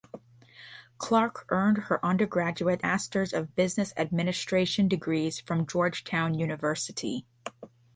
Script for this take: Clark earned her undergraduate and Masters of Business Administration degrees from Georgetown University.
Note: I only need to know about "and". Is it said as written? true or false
false